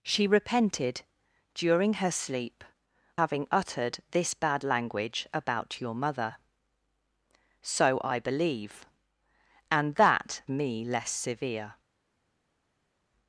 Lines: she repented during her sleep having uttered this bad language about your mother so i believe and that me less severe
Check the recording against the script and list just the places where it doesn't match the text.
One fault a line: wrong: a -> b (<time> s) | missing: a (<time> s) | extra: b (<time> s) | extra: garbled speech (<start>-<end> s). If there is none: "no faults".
no faults